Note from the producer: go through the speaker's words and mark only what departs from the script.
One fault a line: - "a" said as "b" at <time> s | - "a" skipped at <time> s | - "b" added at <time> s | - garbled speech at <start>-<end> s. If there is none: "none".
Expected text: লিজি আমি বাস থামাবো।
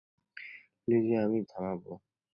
- "বাস" skipped at 1.4 s